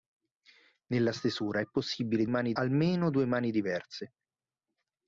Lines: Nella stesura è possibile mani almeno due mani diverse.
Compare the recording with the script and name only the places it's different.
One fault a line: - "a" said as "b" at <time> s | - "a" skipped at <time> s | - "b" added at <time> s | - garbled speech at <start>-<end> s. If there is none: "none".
none